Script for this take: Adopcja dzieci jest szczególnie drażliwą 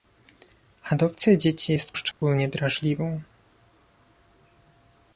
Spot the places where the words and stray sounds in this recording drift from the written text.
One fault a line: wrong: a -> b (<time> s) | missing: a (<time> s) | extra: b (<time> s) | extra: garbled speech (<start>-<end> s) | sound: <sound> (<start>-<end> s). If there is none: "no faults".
sound: dropout (2.1-2.2 s)